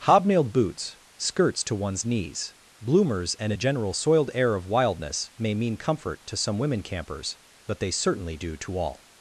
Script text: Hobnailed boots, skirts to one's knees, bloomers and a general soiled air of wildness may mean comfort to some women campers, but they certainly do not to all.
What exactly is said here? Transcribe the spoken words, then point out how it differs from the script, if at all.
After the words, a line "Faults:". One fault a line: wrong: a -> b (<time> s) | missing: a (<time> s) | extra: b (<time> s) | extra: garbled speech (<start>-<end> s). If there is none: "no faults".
Hobnailed boots, skirts to one's knees, bloomers and a general soiled air of wildness may mean comfort to some women campers, but they certainly do to all.
Faults:
missing: not (8.5 s)